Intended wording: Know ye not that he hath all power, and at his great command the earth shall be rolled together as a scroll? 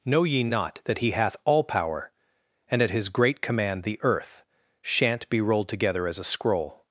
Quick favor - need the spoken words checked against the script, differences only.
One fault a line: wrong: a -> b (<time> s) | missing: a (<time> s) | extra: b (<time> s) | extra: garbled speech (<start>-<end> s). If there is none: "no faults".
wrong: shall -> shan't (4.8 s)